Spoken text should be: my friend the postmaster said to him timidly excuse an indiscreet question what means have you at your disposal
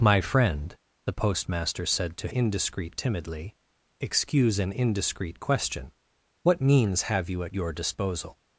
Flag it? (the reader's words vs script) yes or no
yes